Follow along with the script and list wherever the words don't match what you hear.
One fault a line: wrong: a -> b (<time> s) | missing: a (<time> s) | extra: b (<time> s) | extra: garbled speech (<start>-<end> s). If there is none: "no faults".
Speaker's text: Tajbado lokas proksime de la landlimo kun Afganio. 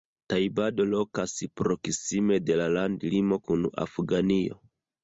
no faults